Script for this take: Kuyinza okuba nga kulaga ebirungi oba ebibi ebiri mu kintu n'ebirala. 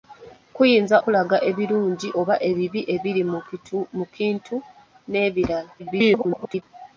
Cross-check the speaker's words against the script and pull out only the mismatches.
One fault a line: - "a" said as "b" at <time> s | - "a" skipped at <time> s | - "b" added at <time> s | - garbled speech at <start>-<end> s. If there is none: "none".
- "okuba nga" skipped at 1.0 s
- garbled speech at 5.8-6.6 s